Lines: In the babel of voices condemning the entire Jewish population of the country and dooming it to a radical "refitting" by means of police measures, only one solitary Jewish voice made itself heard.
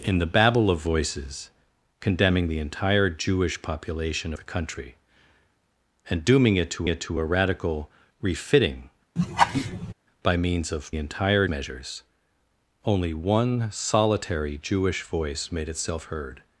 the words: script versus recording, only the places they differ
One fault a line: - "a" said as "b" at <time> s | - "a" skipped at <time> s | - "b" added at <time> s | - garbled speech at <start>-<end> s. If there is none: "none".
- "of" skipped at 4.3 s
- "it to" added at 6.9 s
- "police" said as "entire" at 11.0 s